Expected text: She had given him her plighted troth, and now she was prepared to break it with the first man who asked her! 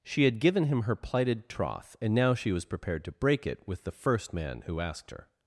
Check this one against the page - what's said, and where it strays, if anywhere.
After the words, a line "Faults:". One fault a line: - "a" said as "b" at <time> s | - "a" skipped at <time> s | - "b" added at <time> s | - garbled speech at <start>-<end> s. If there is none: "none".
She had given him her plighted troth, and now she was prepared to break it with the first man who asked her!
Faults:
none